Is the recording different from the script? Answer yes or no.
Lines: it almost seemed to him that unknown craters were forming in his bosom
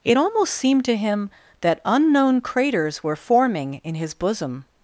no